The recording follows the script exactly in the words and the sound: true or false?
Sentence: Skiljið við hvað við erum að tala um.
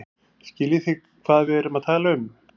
false